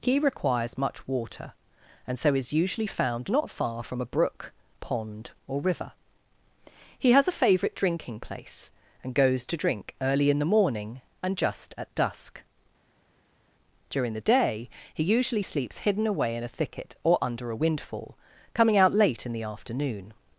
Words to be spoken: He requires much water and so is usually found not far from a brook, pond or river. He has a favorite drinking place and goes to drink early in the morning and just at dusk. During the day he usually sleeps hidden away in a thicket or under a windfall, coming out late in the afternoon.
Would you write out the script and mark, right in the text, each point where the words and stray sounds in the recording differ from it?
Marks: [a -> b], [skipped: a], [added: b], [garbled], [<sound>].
He requires much water and so is usually found not far from a brook, pond or river. He has a favorite drinking place and goes to drink early in the morning and just at dusk. During the day he usually sleeps hidden away in a thicket or under a windfall, coming out late in the afternoon.